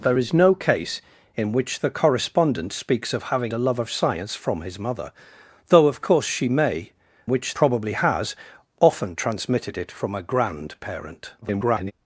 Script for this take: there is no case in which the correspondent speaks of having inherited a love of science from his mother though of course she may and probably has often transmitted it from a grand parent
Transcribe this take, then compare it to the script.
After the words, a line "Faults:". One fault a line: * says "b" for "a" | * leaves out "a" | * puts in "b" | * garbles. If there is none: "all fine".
there is no case in which the correspondent speaks of having a love of science from his mother though of course she may which probably has often transmitted it from a grand parent [garbled]
Faults:
* leaves out "inherited"
* says "which" for "and"
* garbles